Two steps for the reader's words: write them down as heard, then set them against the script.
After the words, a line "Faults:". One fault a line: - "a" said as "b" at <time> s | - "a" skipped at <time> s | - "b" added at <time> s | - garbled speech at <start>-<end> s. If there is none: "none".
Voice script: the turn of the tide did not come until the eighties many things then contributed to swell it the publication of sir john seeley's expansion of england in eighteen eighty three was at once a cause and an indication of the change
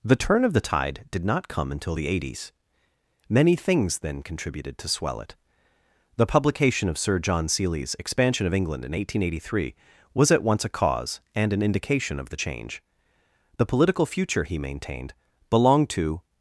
the turn of the tide did not come until the eighties many things then contributed to swell it the publication of sir john seeley's expansion of england in eighteen eighty three was at once a cause and an indication of the change the political future he maintained belonged to
Faults:
- "the political future he maintained belonged to" added at 13.6 s